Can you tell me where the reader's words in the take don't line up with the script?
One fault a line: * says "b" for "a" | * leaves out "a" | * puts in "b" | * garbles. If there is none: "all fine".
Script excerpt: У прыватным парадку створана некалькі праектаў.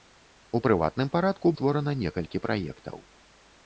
all fine